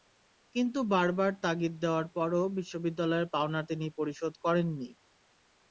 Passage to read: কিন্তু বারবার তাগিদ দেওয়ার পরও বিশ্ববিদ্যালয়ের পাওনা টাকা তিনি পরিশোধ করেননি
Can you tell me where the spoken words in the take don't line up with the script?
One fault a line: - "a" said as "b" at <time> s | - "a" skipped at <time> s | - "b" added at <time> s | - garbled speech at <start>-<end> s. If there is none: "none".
- "টাকা" skipped at 3.6 s